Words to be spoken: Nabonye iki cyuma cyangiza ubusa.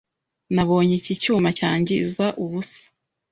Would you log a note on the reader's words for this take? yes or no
no